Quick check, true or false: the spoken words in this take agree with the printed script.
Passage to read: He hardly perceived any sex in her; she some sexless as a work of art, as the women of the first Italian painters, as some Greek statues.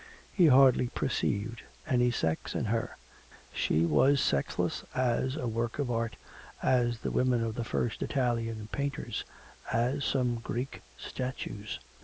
false